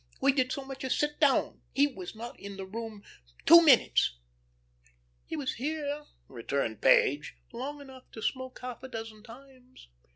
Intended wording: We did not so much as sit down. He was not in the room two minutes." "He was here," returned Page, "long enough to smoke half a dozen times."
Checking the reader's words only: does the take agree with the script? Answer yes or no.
no